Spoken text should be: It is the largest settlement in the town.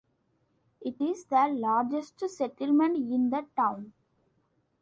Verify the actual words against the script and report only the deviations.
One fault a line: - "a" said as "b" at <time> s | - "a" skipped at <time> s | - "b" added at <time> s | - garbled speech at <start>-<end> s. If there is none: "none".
none